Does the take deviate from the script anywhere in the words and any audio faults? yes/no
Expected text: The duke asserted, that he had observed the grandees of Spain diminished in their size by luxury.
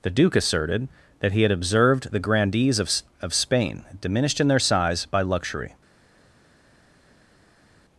yes